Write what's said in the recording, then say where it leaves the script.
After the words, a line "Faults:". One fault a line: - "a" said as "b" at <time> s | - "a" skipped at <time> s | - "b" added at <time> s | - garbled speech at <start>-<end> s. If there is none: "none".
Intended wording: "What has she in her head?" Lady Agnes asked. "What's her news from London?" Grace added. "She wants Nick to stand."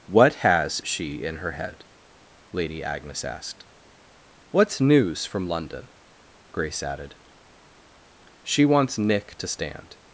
"What has she in her head?" Lady Agnes asked. "What's news from London?" Grace added. "She wants Nick to stand."
Faults:
- "her" skipped at 4.8 s